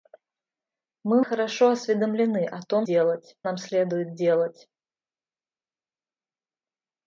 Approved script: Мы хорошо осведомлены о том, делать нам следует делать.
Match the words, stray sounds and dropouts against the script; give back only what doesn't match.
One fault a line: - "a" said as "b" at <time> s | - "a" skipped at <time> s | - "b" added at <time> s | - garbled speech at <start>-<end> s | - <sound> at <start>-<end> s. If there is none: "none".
none